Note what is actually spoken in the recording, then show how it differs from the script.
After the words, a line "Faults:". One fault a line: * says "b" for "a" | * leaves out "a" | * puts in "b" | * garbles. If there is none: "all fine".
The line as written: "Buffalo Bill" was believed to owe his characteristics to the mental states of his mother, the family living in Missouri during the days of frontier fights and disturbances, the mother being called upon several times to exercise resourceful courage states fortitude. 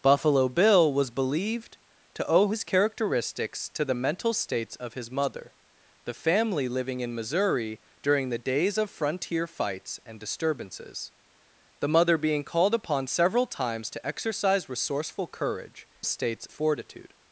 "Buffalo Bill" was believed to owe his characteristics to the mental states of his mother, the family living in Missouri during the days of frontier fights and disturbances, the mother being called upon several times to exercise resourceful courage states fortitude.
Faults:
all fine